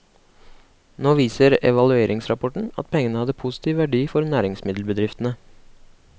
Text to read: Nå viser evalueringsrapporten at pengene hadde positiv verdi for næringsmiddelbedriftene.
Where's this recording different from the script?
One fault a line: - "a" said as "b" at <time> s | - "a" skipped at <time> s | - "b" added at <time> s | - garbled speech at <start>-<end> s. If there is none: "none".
none